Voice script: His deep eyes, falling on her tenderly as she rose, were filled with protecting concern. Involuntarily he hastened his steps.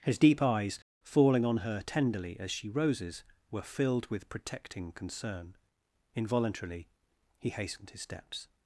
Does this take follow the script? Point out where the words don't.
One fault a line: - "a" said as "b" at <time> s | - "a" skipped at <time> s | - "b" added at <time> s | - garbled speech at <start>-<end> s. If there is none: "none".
- "rose" said as "roses" at 2.7 s